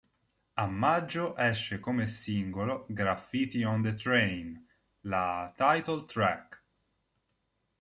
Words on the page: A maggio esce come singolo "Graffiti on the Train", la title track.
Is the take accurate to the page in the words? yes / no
yes